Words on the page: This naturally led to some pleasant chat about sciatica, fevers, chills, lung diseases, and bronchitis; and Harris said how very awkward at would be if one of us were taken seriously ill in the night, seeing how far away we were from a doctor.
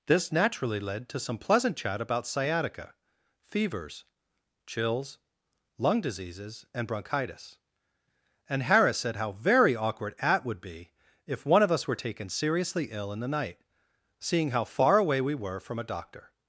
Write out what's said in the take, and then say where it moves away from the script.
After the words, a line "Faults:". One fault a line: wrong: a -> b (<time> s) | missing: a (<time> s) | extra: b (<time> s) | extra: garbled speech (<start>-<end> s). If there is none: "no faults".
This naturally led to some pleasant chat about sciatica, fevers, chills, lung diseases, and bronchitis; and Harris said how very awkward at would be if one of us were taken seriously ill in the night, seeing how far away we were from a doctor.
Faults:
no faults